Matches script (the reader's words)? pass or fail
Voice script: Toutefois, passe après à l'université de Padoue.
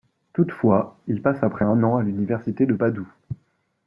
fail